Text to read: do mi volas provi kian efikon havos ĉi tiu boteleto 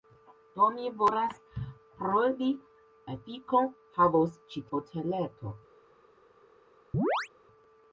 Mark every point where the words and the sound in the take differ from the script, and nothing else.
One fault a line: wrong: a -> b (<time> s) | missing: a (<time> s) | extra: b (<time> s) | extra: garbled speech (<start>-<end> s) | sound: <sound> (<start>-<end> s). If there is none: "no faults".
missing: kian (2.5 s)
missing: tiu (4.7 s)
sound: chirp (6.9-7.3 s)